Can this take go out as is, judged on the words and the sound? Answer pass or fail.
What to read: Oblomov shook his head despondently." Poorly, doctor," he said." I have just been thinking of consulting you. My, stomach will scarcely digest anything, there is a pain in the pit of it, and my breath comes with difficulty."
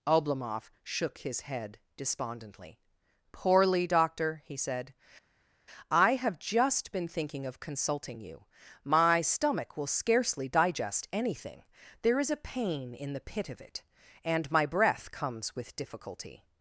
pass